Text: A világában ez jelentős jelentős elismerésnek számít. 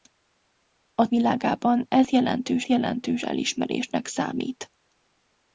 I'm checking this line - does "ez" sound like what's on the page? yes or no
yes